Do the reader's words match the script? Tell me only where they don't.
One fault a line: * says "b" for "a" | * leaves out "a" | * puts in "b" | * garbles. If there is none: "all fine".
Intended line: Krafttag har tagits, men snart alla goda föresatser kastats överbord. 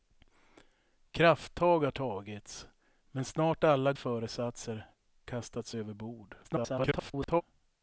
* leaves out "goda"
* garbles